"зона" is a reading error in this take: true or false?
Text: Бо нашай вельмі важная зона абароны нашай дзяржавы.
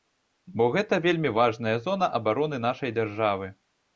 false